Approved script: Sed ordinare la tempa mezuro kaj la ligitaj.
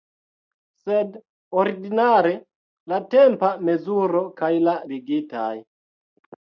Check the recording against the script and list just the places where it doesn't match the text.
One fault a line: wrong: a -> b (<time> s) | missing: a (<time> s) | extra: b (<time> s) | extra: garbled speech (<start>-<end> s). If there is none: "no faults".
no faults